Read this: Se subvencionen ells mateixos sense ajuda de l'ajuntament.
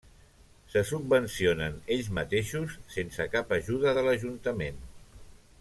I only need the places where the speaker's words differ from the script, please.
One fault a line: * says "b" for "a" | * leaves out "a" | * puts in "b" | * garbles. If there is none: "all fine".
* puts in "cap"